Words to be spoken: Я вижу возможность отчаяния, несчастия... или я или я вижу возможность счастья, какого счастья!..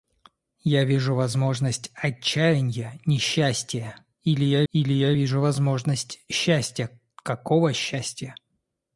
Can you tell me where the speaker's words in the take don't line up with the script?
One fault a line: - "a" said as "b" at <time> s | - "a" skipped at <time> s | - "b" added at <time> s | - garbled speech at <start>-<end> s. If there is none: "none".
none